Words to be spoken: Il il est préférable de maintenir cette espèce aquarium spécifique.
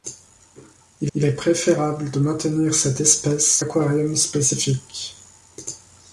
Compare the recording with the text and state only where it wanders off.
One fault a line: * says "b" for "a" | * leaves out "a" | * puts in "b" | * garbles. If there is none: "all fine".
all fine